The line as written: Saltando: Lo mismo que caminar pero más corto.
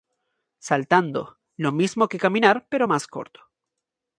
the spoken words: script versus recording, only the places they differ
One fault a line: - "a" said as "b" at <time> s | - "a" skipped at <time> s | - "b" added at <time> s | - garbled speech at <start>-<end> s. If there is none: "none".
none